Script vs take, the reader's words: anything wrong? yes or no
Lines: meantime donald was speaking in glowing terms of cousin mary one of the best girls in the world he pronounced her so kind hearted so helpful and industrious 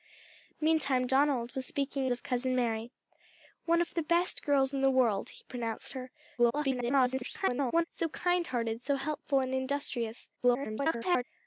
yes